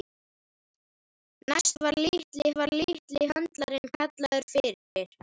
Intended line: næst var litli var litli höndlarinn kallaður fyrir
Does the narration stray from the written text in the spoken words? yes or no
no